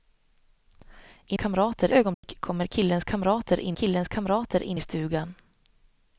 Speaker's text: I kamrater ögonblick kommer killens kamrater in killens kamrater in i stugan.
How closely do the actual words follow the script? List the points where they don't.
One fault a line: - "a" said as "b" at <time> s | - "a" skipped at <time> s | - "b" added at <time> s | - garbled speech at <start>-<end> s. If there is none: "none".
none